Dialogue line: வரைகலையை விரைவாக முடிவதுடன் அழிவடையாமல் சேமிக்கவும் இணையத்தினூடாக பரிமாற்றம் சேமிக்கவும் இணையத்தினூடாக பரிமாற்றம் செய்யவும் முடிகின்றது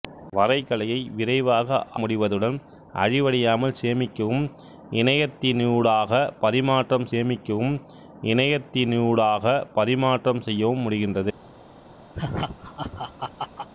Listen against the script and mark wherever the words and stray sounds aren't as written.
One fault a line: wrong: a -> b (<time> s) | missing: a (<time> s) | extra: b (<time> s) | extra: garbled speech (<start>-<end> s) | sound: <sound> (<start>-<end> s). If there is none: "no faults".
sound: laugh (12.1-13.7 s)